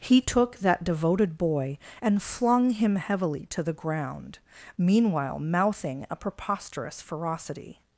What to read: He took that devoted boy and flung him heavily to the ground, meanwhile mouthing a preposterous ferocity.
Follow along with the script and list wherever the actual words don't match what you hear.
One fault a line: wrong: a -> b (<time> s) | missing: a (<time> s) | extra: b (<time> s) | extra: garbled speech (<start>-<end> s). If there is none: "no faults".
no faults